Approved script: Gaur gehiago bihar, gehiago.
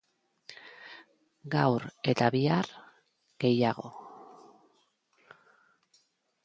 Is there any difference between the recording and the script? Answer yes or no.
yes